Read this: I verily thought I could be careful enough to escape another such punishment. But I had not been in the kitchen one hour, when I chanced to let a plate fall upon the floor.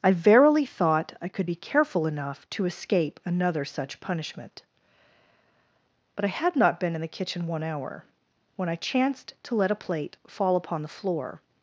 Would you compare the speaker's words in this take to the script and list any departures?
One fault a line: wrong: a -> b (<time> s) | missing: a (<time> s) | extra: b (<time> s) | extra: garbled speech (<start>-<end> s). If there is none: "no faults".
no faults